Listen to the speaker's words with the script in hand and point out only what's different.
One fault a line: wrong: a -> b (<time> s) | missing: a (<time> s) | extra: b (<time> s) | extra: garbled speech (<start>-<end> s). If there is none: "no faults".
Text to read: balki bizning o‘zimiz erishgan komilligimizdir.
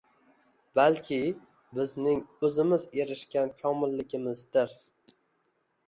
no faults